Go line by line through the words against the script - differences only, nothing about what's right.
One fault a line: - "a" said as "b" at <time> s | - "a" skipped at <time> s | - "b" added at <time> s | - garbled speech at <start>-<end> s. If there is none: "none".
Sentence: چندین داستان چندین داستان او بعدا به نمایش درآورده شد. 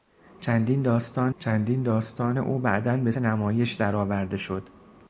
none